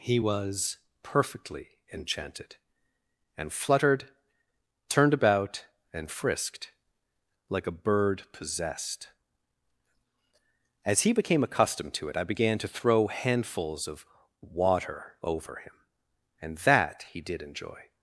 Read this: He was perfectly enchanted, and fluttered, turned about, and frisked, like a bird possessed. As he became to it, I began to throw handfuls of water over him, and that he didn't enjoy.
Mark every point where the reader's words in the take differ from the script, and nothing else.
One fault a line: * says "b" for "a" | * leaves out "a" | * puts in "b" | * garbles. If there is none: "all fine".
* puts in "accustomed"
* says "did" for "didn't"